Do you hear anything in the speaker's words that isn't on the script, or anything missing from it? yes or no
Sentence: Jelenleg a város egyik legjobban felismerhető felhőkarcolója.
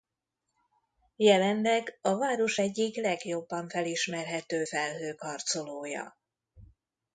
no